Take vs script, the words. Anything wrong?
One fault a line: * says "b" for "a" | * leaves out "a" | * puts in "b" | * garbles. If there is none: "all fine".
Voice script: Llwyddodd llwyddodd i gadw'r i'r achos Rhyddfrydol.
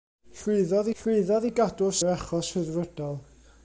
all fine